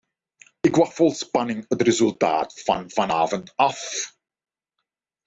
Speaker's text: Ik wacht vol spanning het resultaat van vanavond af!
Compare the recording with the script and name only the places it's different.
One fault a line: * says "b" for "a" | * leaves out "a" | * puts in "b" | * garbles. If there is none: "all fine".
all fine